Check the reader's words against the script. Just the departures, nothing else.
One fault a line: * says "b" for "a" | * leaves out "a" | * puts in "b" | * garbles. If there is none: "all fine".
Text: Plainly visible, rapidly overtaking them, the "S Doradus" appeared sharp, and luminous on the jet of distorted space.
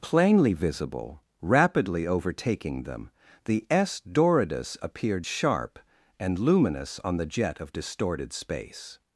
all fine